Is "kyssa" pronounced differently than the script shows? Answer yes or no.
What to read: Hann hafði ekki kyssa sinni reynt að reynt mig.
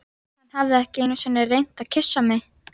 yes